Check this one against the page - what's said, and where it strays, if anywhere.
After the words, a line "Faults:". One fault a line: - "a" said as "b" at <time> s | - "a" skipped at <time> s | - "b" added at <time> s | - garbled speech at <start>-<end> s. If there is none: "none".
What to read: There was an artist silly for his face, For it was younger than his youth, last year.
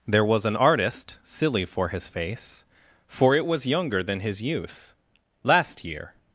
There was an artist silly for his face, For it was younger than his youth, last year.
Faults:
none